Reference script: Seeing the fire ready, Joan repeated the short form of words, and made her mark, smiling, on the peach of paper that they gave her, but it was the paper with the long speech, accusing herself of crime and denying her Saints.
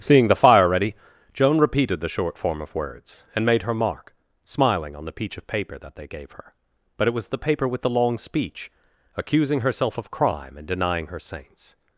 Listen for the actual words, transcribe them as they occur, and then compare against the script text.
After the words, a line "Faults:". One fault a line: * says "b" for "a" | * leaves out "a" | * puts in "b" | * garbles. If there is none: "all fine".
Seeing the fire ready, Joan repeated the short form of words, and made her mark, smiling, on the peach of paper that they gave her, but it was the paper with the long speech, accusing herself of crime and denying her Saints.
Faults:
all fine